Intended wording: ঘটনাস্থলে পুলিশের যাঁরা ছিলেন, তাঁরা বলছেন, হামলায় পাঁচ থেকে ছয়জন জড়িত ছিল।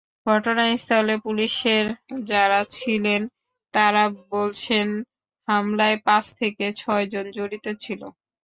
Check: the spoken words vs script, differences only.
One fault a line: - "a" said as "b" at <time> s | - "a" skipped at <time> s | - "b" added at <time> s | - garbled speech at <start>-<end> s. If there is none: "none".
none